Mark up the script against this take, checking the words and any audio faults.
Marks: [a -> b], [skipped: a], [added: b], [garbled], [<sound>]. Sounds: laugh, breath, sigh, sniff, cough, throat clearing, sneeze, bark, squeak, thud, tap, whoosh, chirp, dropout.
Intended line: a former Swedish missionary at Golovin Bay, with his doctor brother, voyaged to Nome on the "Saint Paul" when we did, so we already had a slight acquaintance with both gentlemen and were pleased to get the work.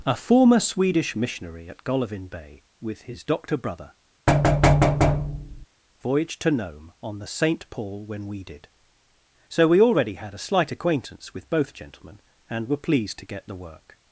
a former Swedish missionary at Golovin Bay, with his doctor brother, [thud] voyaged to Nome on the "Saint Paul" when we did, so we already had a slight acquaintance with both gentlemen and were pleased to get the work.